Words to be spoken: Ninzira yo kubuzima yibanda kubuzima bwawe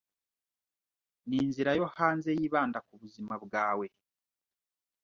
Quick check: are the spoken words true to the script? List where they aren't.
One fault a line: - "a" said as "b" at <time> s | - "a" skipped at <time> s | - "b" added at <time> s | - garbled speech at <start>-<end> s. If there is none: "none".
- "kubuzima" said as "hanze" at 2.0 s